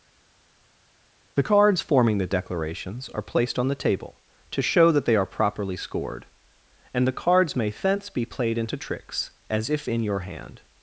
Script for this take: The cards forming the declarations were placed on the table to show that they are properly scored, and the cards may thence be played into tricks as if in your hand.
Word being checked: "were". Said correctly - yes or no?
no